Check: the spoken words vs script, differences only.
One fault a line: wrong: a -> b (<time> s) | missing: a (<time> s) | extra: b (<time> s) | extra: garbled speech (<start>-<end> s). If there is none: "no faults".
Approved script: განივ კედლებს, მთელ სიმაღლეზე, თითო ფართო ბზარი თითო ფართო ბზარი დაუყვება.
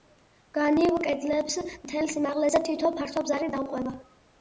missing: თითო ფართო ბზარი (3.5 s)